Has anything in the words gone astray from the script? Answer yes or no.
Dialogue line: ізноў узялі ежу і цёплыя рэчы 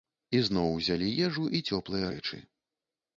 no